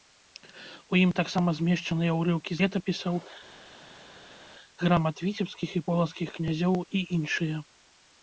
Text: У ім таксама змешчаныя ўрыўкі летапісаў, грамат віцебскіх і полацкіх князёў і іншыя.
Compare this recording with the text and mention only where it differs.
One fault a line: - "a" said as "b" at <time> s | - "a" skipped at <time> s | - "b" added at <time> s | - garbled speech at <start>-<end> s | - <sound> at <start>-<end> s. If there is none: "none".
none